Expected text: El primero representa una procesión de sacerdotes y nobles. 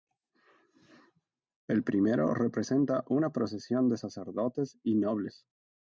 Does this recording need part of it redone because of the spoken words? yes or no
no